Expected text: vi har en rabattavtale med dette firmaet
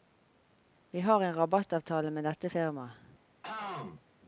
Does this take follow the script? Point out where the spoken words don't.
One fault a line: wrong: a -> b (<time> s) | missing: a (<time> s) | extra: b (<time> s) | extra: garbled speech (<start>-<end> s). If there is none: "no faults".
no faults